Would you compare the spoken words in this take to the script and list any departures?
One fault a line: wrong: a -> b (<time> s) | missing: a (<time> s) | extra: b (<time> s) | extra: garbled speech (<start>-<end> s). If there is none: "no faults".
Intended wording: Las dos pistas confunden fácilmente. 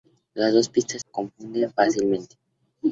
no faults